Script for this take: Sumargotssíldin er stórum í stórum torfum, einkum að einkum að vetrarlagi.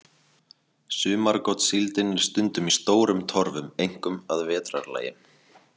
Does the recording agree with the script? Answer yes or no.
no